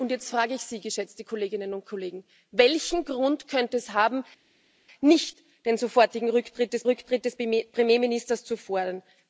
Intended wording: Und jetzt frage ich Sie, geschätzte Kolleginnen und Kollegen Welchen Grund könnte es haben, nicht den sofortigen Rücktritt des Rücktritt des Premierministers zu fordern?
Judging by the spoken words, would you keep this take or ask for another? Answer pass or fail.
pass